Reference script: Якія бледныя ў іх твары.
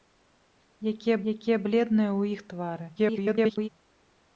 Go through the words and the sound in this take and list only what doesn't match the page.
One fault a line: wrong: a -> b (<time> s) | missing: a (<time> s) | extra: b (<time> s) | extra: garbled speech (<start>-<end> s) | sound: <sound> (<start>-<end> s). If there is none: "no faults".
extra: якія (1.3 s)
extra: garbled speech (3.0-3.7 s)